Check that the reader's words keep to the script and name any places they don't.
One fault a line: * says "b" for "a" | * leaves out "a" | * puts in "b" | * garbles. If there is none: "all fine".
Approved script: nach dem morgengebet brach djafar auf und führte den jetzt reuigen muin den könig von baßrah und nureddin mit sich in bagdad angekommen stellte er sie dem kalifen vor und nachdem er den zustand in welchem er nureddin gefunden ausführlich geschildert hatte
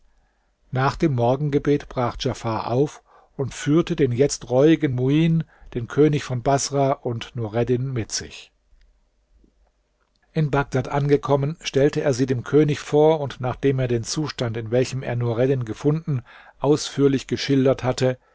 * says "könig" for "kalifen"